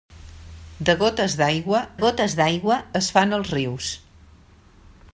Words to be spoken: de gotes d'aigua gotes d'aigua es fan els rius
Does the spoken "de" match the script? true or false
true